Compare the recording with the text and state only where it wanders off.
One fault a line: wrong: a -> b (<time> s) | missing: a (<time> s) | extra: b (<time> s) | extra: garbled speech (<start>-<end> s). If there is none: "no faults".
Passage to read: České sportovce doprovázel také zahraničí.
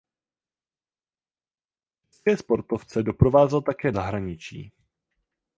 no faults